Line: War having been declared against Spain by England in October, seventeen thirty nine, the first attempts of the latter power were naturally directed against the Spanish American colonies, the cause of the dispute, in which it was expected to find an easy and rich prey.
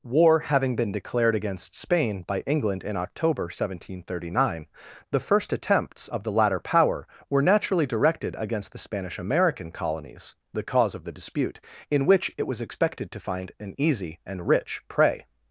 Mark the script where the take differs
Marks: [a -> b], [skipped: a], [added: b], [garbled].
War having been declared against Spain by England in October, seventeen thirty nine, the first attempts of the latter power were naturally directed against the Spanish American colonies, the cause of the dispute, in which it was expected to find an easy and rich prey.